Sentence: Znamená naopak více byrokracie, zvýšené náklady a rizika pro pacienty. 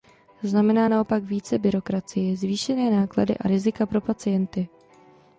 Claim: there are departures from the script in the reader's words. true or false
false